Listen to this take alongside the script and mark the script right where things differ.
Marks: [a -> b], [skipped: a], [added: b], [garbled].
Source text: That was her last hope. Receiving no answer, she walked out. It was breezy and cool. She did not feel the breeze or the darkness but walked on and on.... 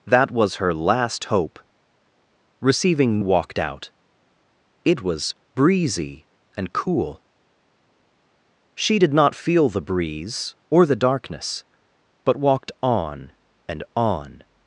That was her last hope. Receiving [skipped: no answer, she] walked out. It was breezy and cool. She did not feel the breeze or the darkness but walked on and on....